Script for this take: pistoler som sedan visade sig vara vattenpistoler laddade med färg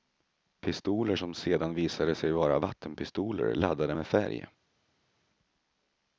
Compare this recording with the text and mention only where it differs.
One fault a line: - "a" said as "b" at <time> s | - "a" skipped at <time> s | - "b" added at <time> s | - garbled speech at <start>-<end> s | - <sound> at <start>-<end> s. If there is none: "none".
none